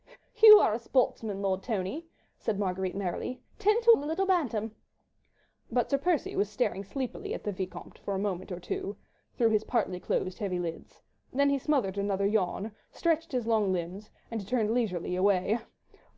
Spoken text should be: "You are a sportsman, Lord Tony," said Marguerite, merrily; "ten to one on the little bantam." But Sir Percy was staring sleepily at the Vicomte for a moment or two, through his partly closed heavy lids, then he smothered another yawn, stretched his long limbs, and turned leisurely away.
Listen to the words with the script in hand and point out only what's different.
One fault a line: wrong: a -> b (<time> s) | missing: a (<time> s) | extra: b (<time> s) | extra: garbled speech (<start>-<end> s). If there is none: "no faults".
missing: one (3.9 s)